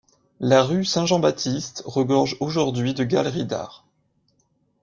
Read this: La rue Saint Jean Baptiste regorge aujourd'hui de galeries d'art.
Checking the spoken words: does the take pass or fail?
pass